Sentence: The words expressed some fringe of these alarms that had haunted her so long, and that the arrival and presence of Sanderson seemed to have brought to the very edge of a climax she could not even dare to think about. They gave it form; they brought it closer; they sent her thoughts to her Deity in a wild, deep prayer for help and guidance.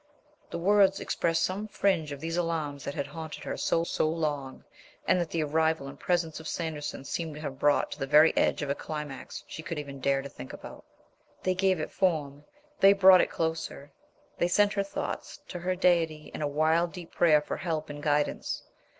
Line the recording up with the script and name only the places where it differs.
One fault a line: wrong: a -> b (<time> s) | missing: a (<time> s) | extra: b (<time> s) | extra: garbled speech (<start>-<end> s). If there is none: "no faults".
extra: so (3.8 s)
missing: not (9.8 s)